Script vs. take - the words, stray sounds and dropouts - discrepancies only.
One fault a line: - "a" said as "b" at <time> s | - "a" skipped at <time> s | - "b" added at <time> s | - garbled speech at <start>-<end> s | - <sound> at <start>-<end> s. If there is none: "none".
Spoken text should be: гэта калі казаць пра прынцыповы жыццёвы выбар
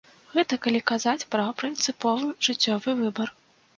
none